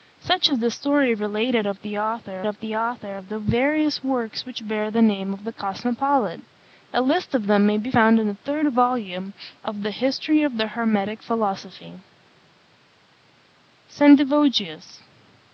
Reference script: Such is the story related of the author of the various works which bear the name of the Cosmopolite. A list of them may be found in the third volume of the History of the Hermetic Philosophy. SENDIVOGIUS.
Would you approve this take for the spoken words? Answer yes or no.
no